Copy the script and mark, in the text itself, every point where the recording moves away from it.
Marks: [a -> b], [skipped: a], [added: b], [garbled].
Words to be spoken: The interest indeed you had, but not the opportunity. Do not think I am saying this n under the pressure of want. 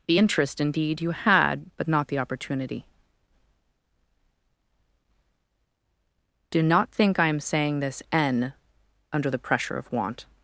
The interest indeed you had, but not the opportunity. Do not think I am saying this n under the pressure of want.